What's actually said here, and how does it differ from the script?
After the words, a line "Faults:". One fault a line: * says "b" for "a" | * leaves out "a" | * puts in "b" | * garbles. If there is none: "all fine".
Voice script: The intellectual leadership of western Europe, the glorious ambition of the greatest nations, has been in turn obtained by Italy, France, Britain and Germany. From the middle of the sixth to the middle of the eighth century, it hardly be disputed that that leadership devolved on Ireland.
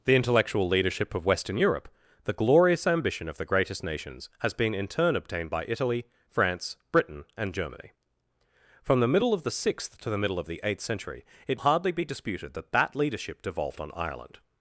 The intellectual leadership of western Europe, the glorious ambition of the greatest nations, has been in turn obtained by Italy, France, Britain and Germany. From the middle of the sixth to the middle of the eighth century, it hardly be disputed that that leadership devolved on Ireland.
Faults:
all fine